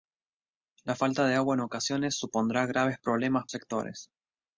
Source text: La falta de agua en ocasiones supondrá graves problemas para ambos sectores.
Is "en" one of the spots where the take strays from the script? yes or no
no